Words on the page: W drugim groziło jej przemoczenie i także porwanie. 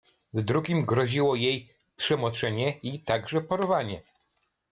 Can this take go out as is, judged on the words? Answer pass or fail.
pass